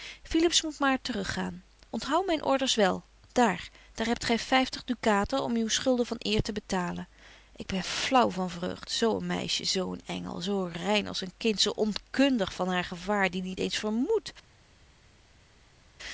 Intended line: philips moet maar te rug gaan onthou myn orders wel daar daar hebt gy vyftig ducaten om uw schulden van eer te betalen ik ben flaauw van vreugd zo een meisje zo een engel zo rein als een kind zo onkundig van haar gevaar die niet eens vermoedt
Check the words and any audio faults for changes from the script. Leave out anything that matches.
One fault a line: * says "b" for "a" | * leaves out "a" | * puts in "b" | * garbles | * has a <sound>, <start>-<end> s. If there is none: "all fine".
all fine